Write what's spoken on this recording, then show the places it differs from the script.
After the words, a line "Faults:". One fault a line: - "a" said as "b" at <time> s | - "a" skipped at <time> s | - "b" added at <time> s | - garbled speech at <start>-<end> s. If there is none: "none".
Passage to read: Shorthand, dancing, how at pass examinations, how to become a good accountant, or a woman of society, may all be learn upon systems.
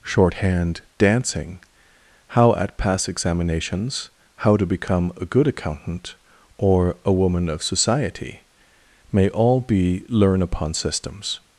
Shorthand, dancing, how at pass examinations, how to become a good accountant, or a woman of society, may all be learn upon systems.
Faults:
none